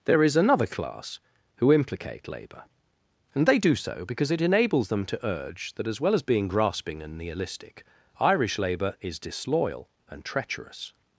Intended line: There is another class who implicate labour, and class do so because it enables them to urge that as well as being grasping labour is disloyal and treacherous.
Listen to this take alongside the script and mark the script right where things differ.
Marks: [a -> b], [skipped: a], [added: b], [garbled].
There is another class who implicate labour, and [class -> they] do so because it enables them to urge that as well as being grasping [added: and nihilistic Irish] labour is disloyal and treacherous.